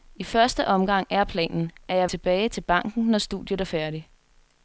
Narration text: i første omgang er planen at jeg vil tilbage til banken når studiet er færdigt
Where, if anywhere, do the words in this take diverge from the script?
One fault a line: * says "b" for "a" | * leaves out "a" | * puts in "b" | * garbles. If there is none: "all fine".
* leaves out "vil"